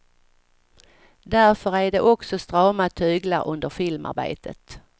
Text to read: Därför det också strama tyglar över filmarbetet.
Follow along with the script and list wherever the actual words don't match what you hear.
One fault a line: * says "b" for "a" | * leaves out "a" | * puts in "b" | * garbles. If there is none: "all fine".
* puts in "är"
* says "under" for "över"